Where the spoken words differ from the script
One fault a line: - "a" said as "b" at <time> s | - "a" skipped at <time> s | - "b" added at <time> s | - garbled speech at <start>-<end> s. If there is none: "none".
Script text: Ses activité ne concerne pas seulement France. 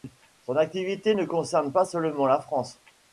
- "Ses" said as "Son" at 0.4 s
- "la" added at 2.3 s